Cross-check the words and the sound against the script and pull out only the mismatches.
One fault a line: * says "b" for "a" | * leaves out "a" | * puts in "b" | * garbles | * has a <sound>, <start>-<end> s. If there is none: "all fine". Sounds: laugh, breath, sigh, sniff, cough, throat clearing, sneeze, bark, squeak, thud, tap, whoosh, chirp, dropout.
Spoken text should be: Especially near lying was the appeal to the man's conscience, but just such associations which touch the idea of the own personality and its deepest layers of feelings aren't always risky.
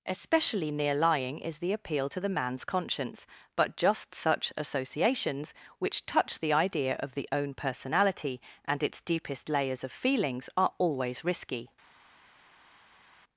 * says "is" for "was"
* says "are" for "aren't"